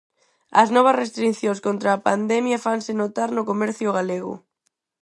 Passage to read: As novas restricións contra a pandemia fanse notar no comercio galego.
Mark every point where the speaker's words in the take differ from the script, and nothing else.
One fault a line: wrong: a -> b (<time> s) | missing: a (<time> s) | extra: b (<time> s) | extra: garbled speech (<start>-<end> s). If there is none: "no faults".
no faults